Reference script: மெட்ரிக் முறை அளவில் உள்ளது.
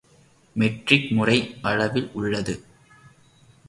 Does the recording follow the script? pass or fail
pass